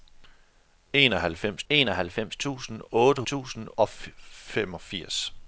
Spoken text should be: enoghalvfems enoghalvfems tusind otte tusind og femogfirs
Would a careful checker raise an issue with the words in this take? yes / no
no